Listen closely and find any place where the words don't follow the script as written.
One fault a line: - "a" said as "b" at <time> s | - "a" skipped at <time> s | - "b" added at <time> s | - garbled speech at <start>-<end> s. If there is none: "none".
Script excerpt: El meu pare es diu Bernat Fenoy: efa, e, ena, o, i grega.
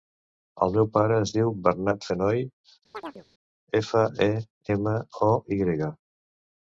none